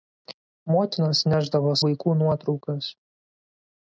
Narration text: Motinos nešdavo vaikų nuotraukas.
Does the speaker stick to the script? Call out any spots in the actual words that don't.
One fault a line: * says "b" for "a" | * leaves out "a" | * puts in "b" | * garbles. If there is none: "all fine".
all fine